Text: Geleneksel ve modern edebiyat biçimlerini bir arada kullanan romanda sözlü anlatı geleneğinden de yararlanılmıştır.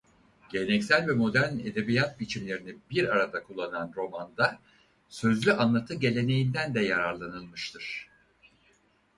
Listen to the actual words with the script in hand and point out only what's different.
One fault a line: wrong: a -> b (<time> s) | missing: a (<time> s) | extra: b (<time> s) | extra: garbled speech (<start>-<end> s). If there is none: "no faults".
no faults